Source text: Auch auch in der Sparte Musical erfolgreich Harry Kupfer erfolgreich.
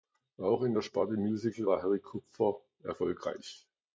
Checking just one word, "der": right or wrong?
right